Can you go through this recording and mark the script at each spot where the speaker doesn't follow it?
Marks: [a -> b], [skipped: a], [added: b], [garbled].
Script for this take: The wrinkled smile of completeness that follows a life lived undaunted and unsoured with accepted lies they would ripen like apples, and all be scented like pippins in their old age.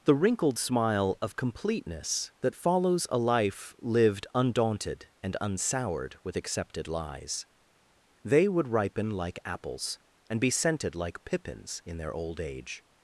The wrinkled smile of completeness that follows a life lived undaunted and unsoured with accepted lies they would ripen like apples, and [skipped: all] be scented like pippins in their old age.